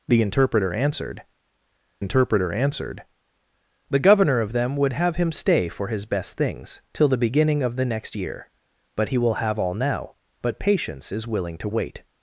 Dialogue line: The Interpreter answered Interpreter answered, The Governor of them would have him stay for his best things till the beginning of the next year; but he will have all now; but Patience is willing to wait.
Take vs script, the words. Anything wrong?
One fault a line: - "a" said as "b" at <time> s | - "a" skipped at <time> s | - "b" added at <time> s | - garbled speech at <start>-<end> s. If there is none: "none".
none